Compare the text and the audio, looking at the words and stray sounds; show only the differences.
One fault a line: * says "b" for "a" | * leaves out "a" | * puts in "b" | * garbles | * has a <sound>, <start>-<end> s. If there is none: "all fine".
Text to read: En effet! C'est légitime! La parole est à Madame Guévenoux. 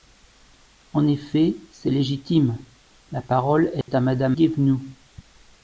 * has a dropout, 3.8-3.9 s